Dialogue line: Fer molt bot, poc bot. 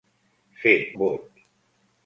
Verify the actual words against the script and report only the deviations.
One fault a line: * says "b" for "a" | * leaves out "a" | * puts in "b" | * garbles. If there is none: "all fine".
* leaves out "molt bot poc"